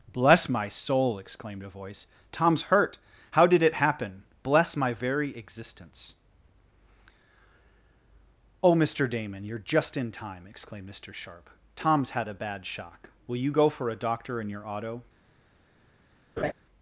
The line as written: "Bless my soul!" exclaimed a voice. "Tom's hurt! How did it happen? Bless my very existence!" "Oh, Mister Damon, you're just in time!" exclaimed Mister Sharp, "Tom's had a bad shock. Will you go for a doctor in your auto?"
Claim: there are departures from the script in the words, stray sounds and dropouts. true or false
true